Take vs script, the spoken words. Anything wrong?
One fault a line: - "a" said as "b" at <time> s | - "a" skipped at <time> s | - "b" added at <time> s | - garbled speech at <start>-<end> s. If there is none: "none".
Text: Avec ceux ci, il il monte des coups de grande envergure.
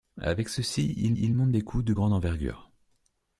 none